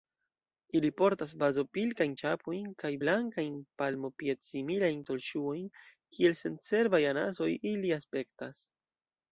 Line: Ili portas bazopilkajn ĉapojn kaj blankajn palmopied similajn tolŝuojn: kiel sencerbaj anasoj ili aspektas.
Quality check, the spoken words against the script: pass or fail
pass